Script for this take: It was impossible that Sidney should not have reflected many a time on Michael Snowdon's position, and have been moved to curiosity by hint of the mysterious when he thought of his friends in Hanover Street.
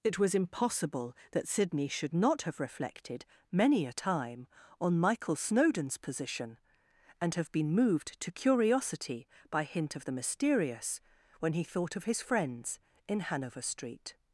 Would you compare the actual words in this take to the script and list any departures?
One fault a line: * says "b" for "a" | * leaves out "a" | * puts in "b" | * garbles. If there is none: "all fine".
all fine